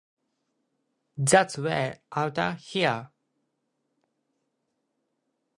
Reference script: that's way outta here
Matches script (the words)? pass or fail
pass